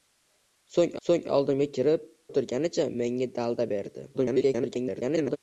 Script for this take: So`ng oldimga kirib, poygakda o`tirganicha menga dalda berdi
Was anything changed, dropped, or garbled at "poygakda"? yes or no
yes